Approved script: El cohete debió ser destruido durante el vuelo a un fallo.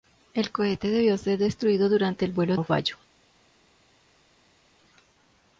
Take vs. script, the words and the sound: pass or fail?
pass